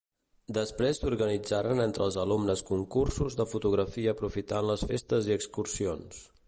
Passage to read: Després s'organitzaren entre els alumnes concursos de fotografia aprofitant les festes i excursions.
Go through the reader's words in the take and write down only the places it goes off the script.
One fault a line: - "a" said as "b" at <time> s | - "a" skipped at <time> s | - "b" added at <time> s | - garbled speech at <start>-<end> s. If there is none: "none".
none